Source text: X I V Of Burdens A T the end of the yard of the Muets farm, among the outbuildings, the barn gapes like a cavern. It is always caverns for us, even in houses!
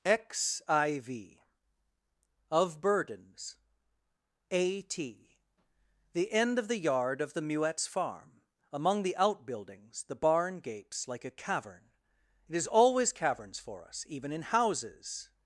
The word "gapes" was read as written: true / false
true